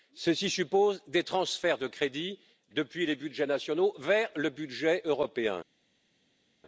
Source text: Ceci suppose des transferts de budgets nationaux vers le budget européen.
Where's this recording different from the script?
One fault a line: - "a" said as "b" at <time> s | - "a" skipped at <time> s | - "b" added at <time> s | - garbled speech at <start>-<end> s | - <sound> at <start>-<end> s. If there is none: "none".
- "crédits depuis les" added at 1.9 s